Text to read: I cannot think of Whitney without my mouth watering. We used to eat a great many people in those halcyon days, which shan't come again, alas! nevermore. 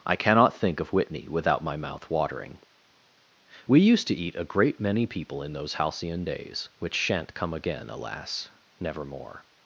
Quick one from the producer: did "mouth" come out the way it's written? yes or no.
yes